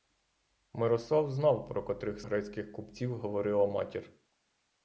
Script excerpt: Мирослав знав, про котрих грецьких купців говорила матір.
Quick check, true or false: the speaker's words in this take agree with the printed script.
true